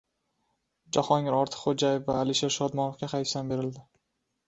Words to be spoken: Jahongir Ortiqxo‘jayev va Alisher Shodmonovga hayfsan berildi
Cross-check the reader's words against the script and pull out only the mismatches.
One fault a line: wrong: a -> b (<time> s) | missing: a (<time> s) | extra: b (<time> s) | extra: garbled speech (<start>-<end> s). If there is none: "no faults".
no faults